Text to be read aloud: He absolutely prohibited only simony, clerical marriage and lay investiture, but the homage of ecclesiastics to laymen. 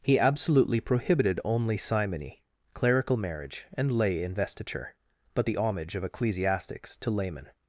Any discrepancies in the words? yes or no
no